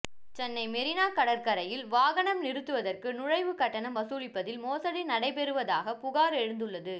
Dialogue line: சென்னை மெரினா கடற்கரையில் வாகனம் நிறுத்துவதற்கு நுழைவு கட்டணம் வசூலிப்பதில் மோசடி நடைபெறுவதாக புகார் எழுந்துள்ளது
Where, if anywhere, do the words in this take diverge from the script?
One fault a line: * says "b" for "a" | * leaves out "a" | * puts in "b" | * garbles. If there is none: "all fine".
all fine